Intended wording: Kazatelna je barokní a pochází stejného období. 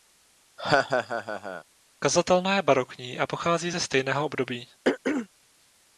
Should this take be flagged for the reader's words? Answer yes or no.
yes